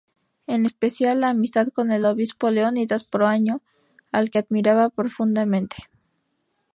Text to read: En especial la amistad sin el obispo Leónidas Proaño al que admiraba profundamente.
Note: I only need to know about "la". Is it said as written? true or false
true